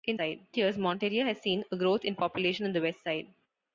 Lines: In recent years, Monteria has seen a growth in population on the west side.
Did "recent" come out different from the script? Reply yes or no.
yes